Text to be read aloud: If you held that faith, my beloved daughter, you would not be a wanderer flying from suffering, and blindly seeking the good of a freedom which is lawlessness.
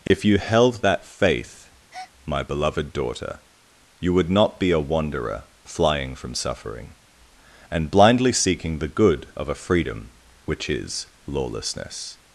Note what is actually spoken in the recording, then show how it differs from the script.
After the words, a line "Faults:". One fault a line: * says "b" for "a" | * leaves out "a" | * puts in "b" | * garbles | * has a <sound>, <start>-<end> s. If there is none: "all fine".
If you held that faith, my beloved daughter, you would not be a wanderer flying from suffering, and blindly seeking the good of a freedom which is lawlessness.
Faults:
* has a dropout, 0.1-0.1 s
* has a breath, 1.9-2.1 s